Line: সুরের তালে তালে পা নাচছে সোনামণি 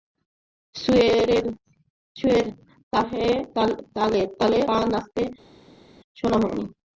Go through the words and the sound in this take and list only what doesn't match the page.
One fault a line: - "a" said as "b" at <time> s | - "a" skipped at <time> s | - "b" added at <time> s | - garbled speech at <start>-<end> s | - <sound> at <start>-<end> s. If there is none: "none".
none